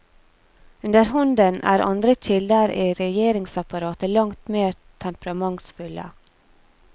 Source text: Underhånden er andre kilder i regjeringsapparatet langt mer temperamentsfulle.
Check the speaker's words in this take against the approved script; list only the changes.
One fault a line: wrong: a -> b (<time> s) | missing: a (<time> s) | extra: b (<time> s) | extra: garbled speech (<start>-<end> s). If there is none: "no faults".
no faults